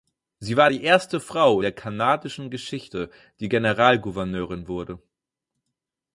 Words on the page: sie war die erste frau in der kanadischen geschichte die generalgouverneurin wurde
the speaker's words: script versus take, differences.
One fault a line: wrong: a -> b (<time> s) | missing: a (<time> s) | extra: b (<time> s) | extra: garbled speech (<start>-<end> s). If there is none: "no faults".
missing: in (1.6 s)